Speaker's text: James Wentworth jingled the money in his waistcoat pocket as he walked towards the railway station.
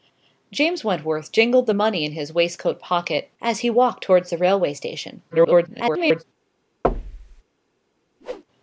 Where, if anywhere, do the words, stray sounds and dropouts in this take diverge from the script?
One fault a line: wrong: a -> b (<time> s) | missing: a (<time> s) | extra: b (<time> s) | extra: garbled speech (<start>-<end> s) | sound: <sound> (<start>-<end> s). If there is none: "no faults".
extra: garbled speech (5.3-6.2 s)
sound: thud (6.8-7.4 s)
sound: whoosh (8.2-8.4 s)